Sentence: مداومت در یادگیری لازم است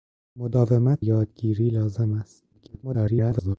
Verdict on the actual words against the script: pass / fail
fail